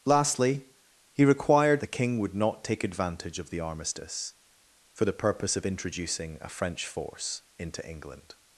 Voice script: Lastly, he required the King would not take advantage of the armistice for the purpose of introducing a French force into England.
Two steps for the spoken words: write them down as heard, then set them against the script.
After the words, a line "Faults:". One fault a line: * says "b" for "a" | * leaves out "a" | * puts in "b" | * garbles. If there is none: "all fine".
Lastly, he required the King would not take advantage of the armistice for the purpose of introducing a French force into England.
Faults:
all fine